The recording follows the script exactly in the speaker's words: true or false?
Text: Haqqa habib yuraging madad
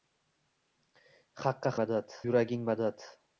false